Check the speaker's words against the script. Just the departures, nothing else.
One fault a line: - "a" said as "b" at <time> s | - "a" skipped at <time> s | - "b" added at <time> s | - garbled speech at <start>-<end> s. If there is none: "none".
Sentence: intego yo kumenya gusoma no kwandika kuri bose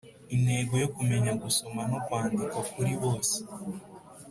none